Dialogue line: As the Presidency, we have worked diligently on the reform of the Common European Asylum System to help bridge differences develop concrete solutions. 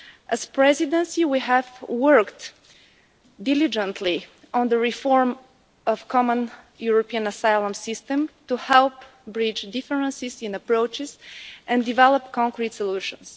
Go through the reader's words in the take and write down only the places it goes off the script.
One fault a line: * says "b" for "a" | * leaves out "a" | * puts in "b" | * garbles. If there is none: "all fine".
* puts in "in approaches and"